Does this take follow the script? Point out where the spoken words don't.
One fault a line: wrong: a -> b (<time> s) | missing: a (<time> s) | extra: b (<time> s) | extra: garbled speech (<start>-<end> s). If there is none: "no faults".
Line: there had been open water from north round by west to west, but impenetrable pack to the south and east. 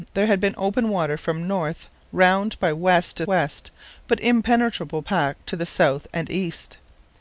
no faults